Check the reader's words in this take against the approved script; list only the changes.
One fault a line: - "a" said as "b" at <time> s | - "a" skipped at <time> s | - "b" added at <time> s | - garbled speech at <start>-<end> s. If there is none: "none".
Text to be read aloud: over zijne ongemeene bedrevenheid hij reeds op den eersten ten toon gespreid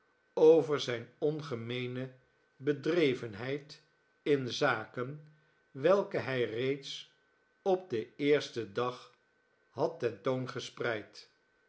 - "in zaken welke" added at 4.2 s
- "dag had" added at 8.7 s